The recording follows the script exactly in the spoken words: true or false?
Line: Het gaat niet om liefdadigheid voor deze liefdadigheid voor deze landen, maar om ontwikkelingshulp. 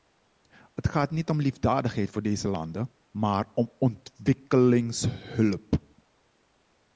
false